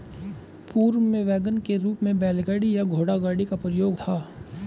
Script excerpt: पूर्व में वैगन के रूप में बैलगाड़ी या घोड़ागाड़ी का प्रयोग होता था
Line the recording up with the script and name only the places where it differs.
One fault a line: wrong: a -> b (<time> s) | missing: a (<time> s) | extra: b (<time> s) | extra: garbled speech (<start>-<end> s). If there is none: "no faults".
missing: होता (4.0 s)